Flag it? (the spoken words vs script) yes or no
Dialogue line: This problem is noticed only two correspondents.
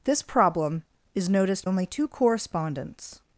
no